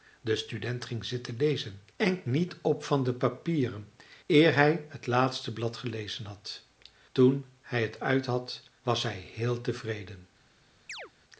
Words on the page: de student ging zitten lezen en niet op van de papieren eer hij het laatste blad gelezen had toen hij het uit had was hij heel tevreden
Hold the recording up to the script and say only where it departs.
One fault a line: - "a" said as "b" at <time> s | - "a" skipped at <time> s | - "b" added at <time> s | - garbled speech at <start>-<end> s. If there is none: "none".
none